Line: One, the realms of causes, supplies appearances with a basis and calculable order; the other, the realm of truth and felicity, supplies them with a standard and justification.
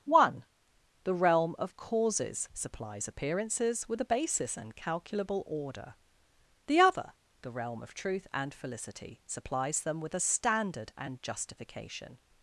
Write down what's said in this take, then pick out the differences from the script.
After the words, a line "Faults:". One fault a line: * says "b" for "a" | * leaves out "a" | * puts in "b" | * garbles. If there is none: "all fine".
One, the realm of causes, supplies appearances with a basis and calculable order; the other, the realm of truth and felicity, supplies them with a standard and justification.
Faults:
* says "realm" for "realms"